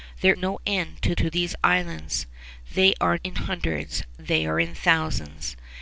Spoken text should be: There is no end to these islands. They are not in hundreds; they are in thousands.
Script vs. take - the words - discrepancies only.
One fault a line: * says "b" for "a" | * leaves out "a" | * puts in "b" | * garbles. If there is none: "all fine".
* leaves out "is"
* puts in "to"
* leaves out "not"